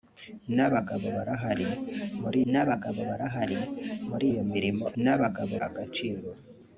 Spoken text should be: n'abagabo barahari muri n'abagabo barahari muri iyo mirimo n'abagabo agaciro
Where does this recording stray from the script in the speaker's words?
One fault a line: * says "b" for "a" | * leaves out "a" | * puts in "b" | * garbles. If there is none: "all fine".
all fine